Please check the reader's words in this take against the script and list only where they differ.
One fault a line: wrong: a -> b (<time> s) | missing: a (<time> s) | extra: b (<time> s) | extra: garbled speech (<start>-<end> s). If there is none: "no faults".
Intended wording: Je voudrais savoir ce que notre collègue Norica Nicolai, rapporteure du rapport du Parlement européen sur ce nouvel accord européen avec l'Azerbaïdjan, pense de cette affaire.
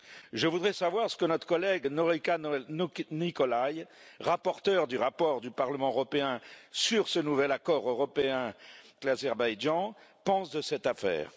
missing: avec (8.5 s)